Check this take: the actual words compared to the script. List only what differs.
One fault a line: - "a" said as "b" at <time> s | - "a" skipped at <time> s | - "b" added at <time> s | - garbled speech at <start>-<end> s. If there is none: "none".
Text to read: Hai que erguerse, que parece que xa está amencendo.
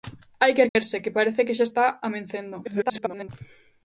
- garbled speech at 2.6-3.3 s